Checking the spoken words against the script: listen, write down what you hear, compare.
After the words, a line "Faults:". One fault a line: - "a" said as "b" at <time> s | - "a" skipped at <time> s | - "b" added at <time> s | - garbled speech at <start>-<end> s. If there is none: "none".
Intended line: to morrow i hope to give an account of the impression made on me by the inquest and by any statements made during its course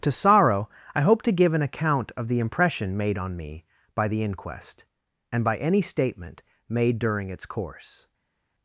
to sorrow i hope to give an account of the impression made on me by the inquest and by any statement made during its course
Faults:
- "morrow" said as "sorrow" at 0.1 s
- "statements" said as "statement" at 5.8 s